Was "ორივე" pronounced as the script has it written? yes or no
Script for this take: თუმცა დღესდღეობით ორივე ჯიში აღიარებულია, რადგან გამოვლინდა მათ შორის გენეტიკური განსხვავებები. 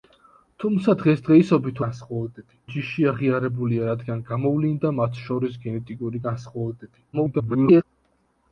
no